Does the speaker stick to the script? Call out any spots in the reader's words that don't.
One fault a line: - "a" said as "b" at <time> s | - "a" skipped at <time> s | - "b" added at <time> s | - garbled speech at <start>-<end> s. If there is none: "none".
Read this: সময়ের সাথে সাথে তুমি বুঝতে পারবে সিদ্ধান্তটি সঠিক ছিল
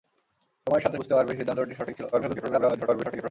- "সাথে তুমি" skipped at 1.0 s
- garbled speech at 2.1-3.3 s